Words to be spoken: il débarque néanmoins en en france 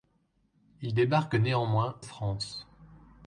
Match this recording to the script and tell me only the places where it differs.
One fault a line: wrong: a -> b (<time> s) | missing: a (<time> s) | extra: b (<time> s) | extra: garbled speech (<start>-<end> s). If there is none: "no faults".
missing: en en (2.0 s)